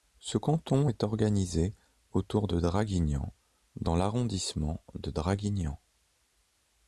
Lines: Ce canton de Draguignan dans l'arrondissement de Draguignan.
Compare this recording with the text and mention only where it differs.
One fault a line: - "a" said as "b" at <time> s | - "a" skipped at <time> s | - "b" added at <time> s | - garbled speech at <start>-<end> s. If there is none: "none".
- "est organisé autour" added at 0.9 s